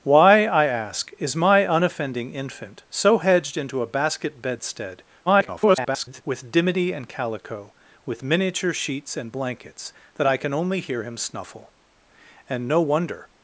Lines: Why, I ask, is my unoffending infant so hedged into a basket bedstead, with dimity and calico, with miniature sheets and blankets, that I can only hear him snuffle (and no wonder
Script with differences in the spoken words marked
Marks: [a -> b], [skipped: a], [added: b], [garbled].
Why, I ask, is my unoffending infant so hedged into a basket bedstead, [garbled] with dimity and calico, with miniature sheets and blankets, that I can only hear him snuffle (and no wonder